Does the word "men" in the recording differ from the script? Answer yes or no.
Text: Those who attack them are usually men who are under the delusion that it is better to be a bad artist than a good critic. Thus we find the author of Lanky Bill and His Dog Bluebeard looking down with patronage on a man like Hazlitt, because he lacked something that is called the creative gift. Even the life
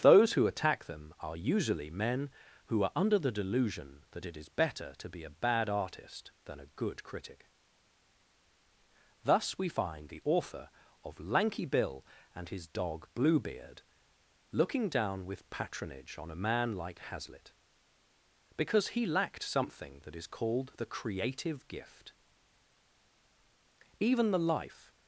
no